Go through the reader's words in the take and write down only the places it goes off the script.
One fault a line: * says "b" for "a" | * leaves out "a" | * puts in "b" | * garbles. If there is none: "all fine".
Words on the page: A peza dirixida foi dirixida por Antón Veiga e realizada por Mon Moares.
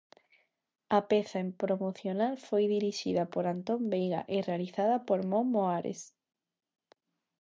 * says "promocional" for "dirixida"